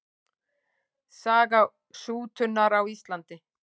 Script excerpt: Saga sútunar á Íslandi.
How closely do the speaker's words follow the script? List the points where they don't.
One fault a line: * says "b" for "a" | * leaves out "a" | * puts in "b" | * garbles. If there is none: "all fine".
all fine